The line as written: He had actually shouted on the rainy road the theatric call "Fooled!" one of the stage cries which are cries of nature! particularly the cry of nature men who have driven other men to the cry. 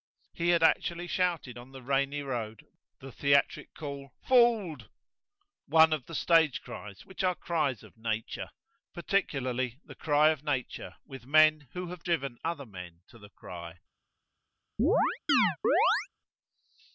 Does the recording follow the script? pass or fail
fail